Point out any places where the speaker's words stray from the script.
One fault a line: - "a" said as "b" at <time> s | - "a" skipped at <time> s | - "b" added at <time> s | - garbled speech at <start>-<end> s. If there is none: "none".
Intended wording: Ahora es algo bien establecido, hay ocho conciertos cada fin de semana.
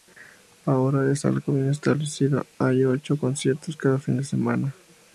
none